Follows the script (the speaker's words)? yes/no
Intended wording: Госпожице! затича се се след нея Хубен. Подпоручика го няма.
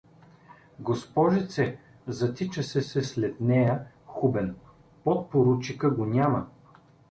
yes